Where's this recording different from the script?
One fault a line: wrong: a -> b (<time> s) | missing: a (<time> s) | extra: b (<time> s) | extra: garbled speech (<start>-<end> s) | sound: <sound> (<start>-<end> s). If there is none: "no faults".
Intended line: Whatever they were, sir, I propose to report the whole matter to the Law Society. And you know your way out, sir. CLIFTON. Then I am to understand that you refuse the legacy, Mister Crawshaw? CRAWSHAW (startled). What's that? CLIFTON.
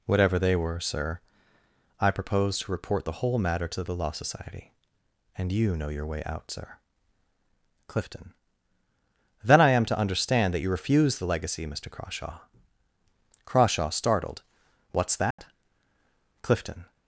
sound: dropout (15.3-15.4 s)